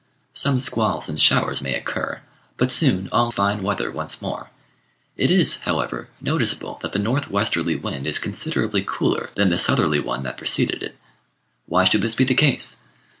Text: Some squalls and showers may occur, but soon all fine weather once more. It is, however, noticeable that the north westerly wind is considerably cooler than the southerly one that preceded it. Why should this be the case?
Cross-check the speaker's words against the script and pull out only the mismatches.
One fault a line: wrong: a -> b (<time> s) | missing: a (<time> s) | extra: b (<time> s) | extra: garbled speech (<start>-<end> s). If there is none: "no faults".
no faults